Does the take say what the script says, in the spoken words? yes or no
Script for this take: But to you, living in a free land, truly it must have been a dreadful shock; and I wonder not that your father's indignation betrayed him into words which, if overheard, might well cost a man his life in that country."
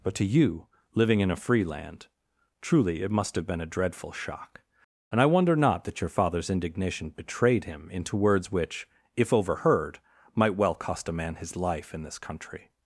no